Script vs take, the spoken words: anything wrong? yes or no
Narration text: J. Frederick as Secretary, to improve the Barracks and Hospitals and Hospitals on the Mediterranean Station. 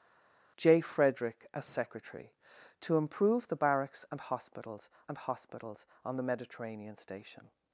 no